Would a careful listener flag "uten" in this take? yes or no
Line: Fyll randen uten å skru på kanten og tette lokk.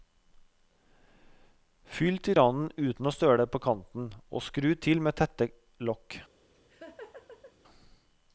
no